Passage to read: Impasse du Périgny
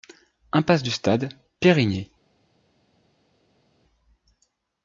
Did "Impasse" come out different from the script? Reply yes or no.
no